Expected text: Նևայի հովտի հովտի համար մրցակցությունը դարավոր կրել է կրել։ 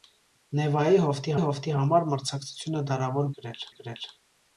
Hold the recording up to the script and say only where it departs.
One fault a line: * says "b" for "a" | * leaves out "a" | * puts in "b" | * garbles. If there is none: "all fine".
all fine